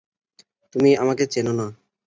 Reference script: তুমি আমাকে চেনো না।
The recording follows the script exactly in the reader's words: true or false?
true